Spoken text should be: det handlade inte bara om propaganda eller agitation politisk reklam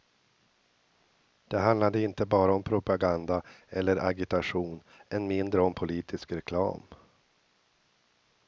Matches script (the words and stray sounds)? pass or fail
fail